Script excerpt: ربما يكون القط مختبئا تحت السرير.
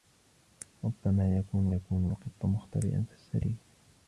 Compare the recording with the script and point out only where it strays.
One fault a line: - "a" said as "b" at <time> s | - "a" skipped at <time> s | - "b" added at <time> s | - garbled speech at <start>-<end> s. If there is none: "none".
- "يكون" added at 1.7 s
- "تحت" skipped at 3.0 s